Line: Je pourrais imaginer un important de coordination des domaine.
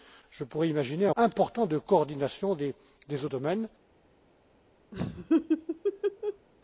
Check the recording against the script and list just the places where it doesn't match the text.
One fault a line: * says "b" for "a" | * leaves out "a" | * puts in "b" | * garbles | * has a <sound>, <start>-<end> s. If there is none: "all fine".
* has a laugh, 4.9-6.5 s